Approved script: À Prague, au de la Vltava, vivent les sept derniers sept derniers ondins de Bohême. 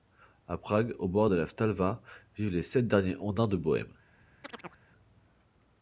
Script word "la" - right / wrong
right